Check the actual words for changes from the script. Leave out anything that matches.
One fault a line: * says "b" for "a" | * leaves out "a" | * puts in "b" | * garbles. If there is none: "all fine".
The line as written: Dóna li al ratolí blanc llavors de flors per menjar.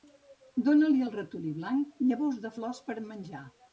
all fine